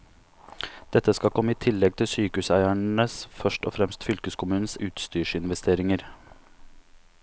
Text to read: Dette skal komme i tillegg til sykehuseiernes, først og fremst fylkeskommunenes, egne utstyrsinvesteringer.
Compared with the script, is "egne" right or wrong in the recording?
wrong